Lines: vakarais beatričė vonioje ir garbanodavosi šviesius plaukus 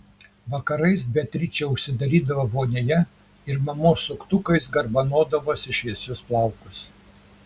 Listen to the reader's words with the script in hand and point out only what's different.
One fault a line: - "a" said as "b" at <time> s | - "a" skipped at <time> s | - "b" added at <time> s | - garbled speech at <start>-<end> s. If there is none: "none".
- "užsidarydavo" added at 1.7 s
- "mamos suktukais" added at 3.7 s